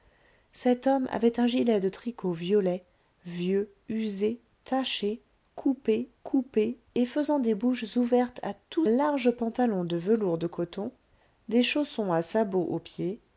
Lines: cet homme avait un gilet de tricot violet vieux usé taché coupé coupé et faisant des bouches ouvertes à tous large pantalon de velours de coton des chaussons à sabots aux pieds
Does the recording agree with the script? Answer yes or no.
yes